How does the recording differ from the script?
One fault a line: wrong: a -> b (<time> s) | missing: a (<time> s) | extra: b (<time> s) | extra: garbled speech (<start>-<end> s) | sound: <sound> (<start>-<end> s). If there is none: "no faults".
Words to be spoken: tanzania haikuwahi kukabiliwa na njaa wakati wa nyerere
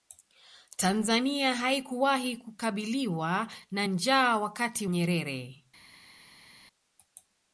missing: wa (4.9 s)